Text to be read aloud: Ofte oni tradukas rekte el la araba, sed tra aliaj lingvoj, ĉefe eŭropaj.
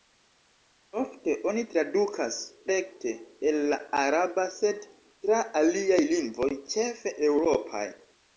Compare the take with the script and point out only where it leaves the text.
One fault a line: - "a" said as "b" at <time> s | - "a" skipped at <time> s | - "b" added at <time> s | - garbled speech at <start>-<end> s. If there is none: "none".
none